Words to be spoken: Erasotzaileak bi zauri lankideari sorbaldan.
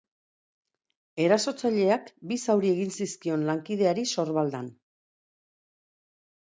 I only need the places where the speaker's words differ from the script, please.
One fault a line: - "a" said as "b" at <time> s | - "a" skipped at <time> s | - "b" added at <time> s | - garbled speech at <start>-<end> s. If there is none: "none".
- "egin zizkion" added at 2.8 s